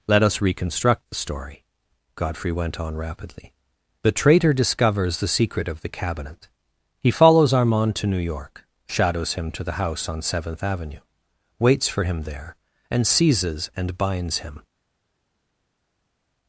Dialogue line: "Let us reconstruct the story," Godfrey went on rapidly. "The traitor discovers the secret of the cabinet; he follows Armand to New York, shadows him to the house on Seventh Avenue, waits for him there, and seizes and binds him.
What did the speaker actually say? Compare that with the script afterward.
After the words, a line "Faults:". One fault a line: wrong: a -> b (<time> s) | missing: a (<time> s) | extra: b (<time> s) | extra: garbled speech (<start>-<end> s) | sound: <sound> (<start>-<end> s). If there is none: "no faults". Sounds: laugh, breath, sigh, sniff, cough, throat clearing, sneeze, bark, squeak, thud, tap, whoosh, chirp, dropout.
"Let us reconstruct the story," Godfrey went on rapidly. "The traitor discovers the secret of the cabinet; he follows Armand to New York, shadows him to the house on Seventh Avenue, waits for him there, and seizes and binds him.
Faults:
no faults